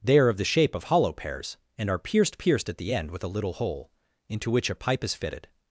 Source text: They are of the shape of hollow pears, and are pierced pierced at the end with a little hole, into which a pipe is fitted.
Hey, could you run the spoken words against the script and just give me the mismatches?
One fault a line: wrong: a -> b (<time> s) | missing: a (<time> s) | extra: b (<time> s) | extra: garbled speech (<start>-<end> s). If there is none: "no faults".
no faults